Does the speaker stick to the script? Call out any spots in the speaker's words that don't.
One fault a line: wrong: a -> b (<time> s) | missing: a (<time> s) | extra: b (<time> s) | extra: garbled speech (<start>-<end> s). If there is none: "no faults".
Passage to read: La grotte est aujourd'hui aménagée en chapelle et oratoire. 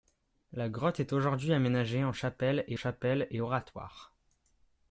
extra: chapelle et (2.7 s)